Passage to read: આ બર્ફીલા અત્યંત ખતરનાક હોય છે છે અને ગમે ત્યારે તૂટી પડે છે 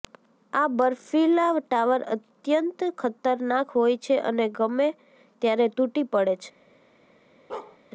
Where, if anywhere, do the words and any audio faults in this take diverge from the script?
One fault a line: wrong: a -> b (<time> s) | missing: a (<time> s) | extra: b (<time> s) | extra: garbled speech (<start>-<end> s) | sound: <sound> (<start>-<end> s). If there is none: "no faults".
extra: ટાવર (1.6 s)
missing: છે (4.2 s)
sound: bark (7.5-7.8 s)